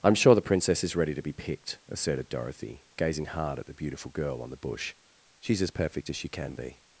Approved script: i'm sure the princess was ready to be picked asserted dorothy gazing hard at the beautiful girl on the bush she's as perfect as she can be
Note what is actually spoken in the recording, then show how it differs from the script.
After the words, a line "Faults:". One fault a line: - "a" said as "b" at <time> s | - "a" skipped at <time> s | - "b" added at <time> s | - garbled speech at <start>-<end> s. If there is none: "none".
i'm sure the princess is ready to be picked asserted dorothy gazing hard at the beautiful girl on the bush she's as perfect as she can be
Faults:
- "was" said as "is" at 0.8 s